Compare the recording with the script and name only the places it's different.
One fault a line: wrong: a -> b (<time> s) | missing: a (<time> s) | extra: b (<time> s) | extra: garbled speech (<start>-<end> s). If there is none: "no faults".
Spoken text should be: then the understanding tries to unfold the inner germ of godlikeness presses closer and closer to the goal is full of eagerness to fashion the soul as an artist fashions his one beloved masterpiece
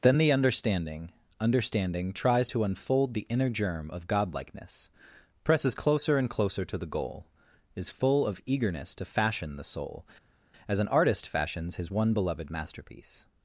extra: understanding (1.4 s)